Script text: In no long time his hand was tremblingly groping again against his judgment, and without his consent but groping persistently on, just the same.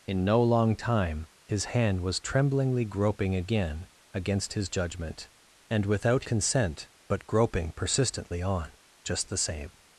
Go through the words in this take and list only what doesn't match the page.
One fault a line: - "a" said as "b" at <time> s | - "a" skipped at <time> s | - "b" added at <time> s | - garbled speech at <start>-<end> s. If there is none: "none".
- "his" skipped at 6.2 s